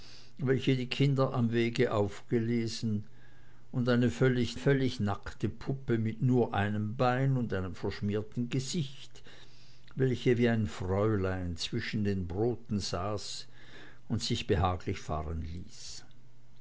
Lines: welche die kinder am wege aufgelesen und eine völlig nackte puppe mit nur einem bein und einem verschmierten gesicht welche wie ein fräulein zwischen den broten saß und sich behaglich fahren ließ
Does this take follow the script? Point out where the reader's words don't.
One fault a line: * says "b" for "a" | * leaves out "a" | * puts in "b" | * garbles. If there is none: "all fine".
* puts in "völlig"